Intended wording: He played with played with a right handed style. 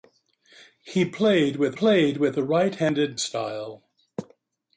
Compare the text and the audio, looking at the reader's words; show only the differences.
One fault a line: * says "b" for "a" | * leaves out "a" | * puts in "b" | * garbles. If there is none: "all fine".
all fine